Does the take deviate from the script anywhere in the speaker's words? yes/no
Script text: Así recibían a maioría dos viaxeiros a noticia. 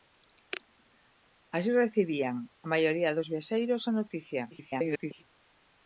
yes